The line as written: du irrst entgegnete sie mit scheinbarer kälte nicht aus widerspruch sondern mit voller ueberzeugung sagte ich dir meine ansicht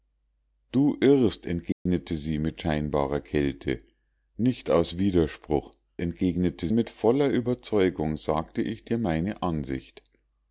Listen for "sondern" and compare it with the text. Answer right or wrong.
wrong